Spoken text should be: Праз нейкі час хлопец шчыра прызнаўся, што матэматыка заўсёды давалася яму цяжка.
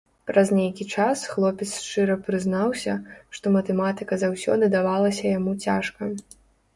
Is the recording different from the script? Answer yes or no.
no